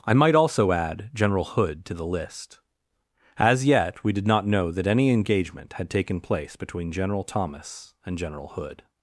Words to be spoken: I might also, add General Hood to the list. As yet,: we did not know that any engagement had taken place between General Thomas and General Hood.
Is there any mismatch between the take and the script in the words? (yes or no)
no